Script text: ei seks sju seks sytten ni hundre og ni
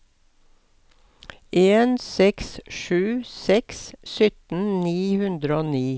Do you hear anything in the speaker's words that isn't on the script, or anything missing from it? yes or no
yes